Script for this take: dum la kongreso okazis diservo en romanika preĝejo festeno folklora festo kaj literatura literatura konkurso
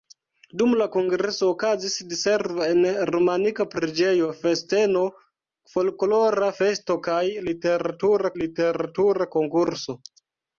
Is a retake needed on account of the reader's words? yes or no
no